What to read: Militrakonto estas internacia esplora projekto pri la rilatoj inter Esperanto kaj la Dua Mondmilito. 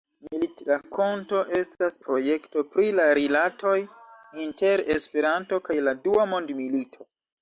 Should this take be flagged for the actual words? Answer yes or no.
yes